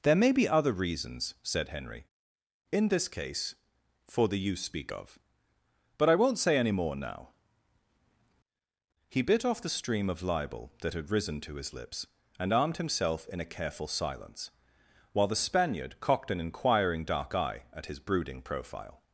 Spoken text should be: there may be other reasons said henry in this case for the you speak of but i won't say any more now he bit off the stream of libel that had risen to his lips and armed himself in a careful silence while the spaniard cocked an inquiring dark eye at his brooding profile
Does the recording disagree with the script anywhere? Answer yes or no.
no